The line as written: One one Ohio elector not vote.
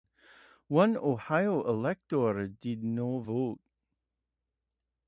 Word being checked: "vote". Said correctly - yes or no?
yes